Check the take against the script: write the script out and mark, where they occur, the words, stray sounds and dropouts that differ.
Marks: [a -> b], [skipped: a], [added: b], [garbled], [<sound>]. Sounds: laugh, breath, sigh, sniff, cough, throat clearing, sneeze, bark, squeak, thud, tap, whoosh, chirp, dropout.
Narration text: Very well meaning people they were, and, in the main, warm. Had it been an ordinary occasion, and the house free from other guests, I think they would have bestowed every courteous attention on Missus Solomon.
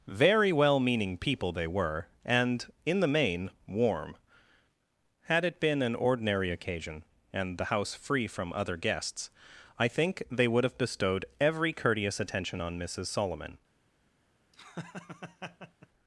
Very well meaning people they were, and, in the main, warm. Had it been an ordinary occasion, and the house free from other guests, I think they would have bestowed every courteous attention on Missus Solomon. [laugh]